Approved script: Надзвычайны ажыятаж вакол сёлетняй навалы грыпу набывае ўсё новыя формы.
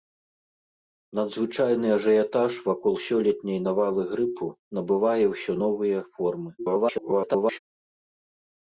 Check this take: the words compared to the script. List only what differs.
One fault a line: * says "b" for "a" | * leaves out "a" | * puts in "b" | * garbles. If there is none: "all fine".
* garbles